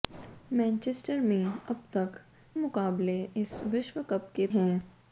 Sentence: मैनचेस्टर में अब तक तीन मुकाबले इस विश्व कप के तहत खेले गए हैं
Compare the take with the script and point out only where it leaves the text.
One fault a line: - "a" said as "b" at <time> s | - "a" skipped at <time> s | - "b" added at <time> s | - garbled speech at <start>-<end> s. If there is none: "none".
- "तीन" skipped at 2.2 s
- "तहत खेले गए" skipped at 4.5 s